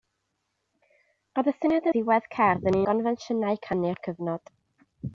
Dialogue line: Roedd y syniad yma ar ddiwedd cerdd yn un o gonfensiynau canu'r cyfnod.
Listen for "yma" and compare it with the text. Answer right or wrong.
wrong